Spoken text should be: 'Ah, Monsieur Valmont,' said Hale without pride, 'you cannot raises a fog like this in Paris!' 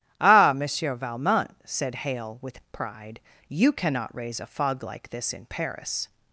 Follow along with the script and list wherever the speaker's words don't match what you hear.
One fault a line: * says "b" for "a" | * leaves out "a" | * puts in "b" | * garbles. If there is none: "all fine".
* says "with" for "without"
* says "raise" for "raises"